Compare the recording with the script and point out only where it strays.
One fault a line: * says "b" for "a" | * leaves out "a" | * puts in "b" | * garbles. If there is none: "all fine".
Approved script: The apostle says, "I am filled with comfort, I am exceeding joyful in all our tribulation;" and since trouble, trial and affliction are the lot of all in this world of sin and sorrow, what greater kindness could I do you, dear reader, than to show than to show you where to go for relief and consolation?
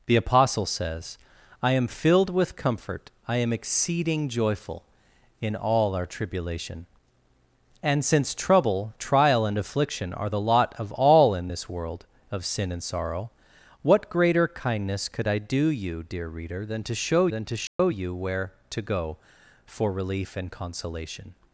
all fine